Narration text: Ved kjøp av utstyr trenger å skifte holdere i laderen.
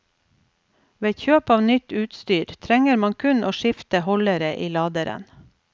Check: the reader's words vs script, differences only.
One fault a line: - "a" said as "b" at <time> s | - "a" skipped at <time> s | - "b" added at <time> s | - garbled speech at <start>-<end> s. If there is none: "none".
- "nytt" added at 1.7 s
- "man kun" added at 3.0 s